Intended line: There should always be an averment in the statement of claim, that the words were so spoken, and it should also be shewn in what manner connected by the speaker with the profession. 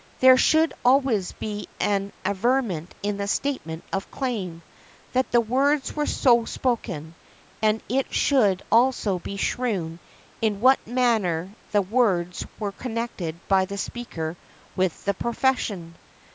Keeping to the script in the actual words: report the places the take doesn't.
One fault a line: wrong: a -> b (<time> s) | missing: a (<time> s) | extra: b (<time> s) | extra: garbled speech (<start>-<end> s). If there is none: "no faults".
extra: the words were (11.7 s)